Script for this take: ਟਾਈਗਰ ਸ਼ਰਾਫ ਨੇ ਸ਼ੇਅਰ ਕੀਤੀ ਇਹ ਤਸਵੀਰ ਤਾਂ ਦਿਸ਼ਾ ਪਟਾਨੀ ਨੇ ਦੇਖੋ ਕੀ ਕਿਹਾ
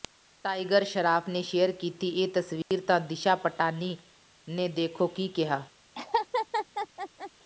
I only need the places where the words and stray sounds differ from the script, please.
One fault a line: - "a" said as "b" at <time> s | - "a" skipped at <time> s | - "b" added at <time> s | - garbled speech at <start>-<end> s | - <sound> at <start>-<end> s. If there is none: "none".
- dropout at 2.6-2.7 s
- laugh at 6.0-7.3 s